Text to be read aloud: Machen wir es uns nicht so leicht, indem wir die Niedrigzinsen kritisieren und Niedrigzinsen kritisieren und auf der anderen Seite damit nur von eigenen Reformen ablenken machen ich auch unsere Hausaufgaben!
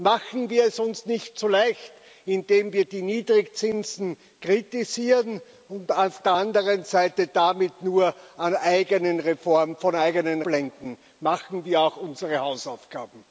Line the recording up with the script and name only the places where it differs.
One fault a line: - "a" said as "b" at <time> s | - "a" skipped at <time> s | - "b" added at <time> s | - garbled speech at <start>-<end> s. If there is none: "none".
- "Niedrigzinsen kritisieren und" skipped at 5.9 s
- "ich" said as "wir" at 11.6 s